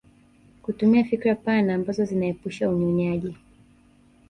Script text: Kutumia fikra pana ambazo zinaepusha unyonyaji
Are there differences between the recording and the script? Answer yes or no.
no